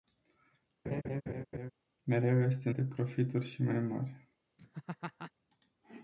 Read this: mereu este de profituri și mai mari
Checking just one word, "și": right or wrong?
right